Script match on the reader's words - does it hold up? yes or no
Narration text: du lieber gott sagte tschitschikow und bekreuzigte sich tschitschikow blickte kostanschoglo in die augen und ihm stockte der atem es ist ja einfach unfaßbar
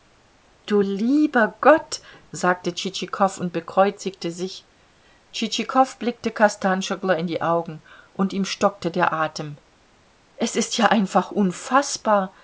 yes